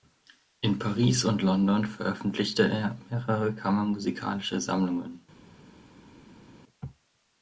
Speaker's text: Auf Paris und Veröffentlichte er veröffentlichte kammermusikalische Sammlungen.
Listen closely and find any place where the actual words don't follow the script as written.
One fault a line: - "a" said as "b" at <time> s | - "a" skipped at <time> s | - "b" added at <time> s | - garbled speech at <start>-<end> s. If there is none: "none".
- "Auf" said as "In" at 0.6 s
- "London" added at 1.4 s
- "veröffentlichte" said as "mehrere" at 3.1 s